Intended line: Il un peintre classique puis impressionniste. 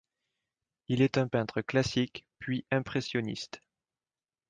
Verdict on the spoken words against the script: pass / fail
fail